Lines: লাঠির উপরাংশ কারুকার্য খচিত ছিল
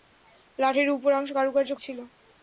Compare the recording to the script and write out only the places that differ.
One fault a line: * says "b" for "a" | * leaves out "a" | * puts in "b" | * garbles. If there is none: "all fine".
* leaves out "খচিত"